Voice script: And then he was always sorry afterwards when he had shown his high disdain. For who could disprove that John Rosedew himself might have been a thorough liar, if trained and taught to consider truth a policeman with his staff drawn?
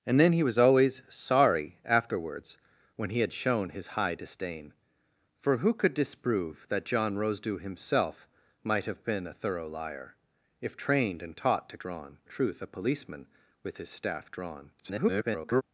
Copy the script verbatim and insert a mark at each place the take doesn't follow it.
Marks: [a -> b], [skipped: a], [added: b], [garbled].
And then he was always sorry afterwards when he had shown his high disdain. For who could disprove that John Rosedew himself might have been a thorough liar, if trained and taught to [consider -> drawn] truth a policeman with his staff drawn? [garbled]